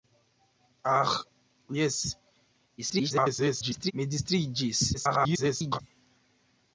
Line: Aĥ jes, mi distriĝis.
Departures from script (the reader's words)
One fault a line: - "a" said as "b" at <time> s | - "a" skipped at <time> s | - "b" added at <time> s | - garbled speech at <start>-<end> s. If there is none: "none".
- garbled speech at 2.8-3.9 s
- garbled speech at 4.9-5.8 s